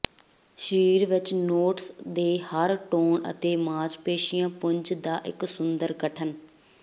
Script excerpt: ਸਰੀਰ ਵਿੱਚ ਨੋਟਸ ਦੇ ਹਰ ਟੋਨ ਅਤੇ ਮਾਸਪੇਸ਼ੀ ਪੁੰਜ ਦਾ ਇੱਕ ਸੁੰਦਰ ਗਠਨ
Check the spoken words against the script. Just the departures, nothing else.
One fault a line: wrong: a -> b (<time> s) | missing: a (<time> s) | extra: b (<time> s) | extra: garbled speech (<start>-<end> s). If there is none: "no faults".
no faults